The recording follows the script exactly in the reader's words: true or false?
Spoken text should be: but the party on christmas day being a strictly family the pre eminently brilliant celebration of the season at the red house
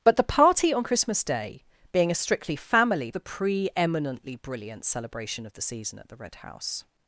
true